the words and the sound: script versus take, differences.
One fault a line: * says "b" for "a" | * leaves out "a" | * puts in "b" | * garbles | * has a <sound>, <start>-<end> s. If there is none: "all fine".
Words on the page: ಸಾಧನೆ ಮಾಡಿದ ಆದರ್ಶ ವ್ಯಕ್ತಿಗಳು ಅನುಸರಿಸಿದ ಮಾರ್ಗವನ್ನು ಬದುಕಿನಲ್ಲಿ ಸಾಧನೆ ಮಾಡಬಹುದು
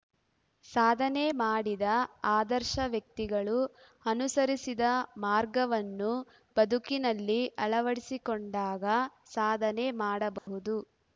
* puts in "ಅಳವಡಿಸಿಕೊಂಡಾಗ"
* has a dropout, 10.4-10.5 s